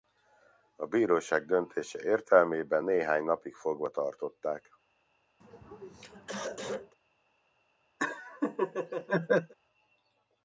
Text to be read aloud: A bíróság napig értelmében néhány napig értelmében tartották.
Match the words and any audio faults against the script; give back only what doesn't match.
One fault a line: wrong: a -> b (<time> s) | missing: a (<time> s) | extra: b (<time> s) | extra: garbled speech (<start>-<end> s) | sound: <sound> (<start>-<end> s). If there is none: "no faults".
wrong: napig -> döntése (1.4 s)
wrong: értelmében -> fogva (3.6 s)
sound: throat clearing (5.4-7.0 s)
sound: laugh (8.0-9.5 s)